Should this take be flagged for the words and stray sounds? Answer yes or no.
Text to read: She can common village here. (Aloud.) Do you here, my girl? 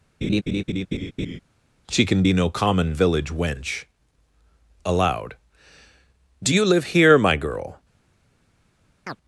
yes